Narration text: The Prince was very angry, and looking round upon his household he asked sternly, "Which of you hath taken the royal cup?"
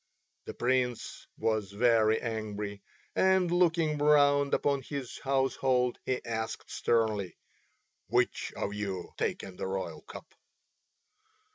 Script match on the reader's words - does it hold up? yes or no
no